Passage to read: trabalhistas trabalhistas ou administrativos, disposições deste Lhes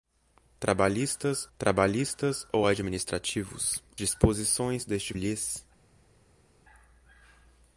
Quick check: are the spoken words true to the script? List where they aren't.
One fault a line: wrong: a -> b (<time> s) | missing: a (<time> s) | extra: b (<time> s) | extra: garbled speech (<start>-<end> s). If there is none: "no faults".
no faults